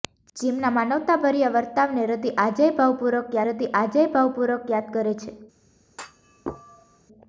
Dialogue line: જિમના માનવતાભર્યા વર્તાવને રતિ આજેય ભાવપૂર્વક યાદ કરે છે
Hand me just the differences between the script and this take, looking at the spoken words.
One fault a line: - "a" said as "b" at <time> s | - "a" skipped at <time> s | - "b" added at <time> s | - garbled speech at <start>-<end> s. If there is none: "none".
- "રતિ આજેય ભાવપૂર્વક" added at 3.5 s